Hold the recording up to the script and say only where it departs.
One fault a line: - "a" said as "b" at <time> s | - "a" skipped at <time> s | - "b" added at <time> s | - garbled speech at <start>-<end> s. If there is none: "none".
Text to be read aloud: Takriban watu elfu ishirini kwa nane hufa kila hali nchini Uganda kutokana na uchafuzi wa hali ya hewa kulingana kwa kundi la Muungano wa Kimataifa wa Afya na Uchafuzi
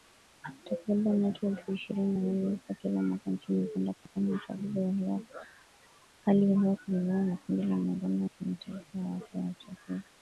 - "kwa" said as "na" at 2.1 s
- "hali" said as "mwaka" at 3.0 s
- "kwa" said as "na" at 7.2 s